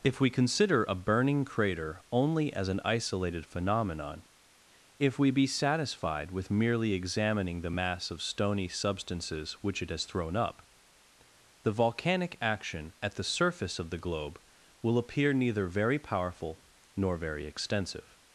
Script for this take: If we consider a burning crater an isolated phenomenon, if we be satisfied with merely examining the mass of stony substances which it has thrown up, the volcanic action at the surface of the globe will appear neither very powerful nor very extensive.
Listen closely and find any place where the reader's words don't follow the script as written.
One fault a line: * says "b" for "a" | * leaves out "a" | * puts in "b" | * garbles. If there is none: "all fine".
* puts in "only as"